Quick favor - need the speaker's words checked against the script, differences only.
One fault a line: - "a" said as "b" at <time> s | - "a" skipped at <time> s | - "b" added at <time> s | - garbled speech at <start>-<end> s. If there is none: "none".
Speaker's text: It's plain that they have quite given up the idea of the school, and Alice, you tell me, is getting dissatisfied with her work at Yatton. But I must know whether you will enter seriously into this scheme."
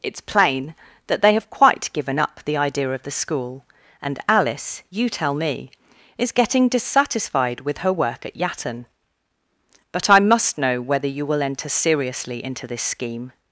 none